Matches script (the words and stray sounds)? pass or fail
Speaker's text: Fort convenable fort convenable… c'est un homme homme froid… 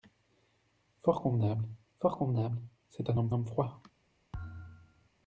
fail